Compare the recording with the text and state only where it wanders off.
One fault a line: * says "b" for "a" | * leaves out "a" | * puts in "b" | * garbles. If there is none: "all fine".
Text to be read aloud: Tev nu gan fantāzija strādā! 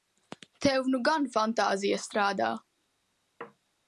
all fine